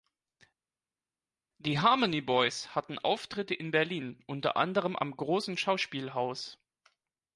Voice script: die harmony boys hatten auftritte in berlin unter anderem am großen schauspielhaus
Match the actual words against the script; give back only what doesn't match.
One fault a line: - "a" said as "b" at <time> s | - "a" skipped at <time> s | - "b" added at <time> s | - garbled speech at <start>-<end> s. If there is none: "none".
none